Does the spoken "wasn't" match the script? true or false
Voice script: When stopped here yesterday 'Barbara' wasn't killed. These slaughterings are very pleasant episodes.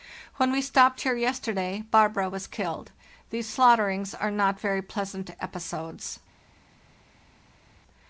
false